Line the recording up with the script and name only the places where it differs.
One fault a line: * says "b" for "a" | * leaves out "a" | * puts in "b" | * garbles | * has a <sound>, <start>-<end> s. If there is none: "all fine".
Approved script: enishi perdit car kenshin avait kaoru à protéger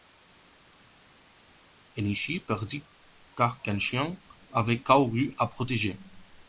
all fine